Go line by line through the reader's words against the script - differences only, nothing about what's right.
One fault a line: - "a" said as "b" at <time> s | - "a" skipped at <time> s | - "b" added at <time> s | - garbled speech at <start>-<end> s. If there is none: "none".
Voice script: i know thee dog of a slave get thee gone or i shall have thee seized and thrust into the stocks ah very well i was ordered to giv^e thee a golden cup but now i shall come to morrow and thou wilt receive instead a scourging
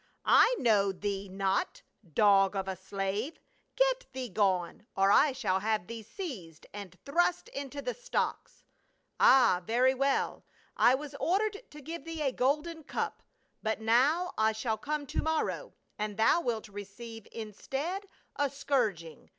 - "not" added at 1.3 s